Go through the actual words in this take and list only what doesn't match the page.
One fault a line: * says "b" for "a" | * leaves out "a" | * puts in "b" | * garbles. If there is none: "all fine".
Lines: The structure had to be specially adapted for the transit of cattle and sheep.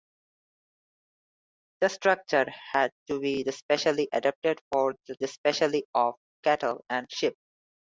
* says "specially" for "transit"